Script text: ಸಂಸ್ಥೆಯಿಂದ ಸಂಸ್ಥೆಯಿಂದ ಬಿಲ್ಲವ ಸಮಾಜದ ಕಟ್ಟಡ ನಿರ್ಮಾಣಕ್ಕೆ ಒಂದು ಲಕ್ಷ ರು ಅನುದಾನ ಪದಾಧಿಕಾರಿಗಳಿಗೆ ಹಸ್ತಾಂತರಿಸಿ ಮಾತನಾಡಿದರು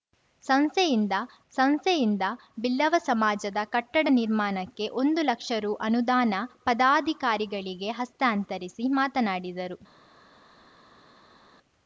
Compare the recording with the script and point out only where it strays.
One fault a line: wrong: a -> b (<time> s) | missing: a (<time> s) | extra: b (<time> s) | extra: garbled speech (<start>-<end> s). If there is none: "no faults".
no faults